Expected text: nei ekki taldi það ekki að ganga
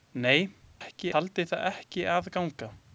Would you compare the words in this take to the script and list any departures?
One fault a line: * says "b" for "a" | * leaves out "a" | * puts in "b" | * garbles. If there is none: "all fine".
all fine